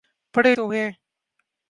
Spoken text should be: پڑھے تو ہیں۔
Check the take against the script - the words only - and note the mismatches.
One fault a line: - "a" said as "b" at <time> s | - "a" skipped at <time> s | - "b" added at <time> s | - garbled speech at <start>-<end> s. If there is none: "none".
none